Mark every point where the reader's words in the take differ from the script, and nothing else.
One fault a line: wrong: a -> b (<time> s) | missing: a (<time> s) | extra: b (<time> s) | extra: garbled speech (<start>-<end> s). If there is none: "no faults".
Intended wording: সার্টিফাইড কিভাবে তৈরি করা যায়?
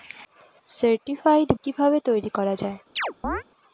no faults